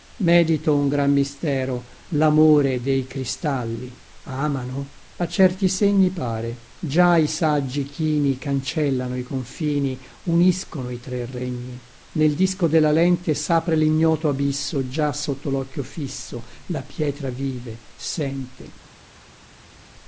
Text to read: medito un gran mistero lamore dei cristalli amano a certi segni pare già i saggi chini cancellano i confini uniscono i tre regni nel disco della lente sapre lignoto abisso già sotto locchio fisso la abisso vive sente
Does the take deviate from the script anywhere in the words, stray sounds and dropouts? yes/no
yes